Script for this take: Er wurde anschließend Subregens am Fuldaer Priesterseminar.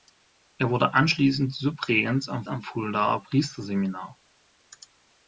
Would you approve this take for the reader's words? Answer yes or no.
no